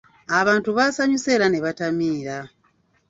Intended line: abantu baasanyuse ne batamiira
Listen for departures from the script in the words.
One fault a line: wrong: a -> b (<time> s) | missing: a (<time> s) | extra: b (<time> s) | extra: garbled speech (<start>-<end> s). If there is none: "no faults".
extra: era (1.4 s)